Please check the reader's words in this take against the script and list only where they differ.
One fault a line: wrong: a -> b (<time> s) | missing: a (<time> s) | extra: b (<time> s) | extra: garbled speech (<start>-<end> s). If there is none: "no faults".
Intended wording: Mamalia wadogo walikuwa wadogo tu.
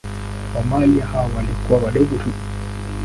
wrong: wadogo -> hao (1.1 s)